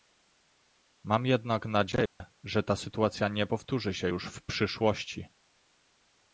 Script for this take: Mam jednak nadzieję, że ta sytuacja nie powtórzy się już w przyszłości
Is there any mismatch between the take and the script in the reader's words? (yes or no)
no